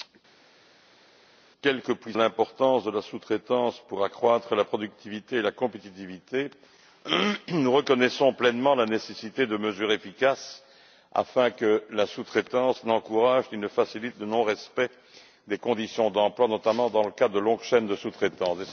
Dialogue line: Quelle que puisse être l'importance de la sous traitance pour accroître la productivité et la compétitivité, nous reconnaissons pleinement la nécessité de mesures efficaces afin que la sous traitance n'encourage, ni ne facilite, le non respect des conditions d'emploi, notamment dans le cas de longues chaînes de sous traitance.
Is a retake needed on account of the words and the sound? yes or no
yes